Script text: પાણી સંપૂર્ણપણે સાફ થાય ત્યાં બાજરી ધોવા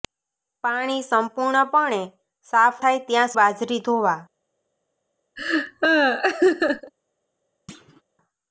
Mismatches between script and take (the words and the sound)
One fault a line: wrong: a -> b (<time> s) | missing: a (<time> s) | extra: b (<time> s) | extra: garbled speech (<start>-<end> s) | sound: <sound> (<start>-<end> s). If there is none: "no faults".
sound: laugh (5.4-6.9 s)
sound: thud (7.7-8.0 s)